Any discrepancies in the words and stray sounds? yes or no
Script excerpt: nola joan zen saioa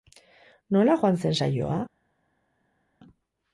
no